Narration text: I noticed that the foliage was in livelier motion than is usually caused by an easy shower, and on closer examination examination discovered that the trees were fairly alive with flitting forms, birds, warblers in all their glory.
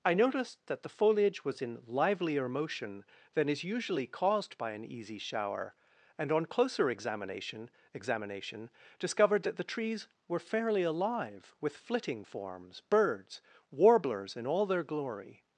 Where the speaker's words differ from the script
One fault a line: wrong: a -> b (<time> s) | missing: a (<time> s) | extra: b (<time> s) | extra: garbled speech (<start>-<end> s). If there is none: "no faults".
no faults